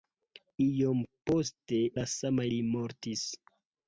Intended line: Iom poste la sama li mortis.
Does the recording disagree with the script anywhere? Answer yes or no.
no